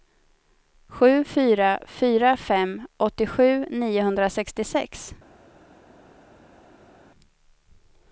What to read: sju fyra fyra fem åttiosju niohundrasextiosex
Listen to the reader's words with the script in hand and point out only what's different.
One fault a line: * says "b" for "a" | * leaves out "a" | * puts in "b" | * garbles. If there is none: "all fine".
all fine